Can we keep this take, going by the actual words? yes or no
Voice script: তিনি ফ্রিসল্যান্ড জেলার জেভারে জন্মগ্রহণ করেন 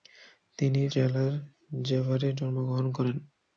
no